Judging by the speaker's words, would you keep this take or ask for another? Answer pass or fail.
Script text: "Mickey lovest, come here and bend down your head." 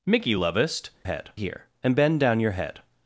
fail